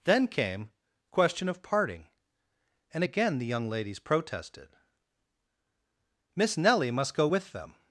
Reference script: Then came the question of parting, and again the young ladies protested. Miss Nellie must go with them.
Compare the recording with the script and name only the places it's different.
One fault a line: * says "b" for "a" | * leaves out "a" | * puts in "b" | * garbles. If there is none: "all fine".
* leaves out "the"